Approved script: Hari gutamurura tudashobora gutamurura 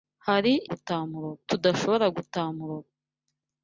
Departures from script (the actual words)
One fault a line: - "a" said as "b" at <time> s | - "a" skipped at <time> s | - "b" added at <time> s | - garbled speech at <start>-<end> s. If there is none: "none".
none